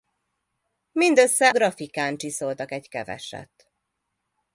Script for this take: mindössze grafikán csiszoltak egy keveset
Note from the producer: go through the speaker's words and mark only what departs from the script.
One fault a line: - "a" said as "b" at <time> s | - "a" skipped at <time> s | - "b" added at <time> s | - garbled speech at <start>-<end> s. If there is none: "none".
none